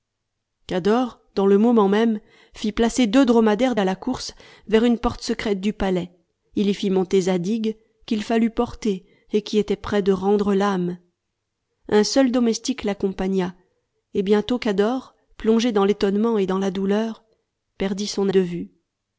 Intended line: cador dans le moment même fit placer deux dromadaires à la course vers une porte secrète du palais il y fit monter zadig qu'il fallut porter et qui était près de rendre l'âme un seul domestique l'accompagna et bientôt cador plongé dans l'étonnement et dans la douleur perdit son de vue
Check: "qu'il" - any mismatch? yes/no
no